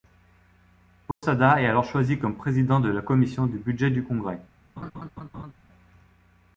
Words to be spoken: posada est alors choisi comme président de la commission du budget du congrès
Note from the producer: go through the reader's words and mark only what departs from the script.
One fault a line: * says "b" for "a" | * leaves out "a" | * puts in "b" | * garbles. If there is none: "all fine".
all fine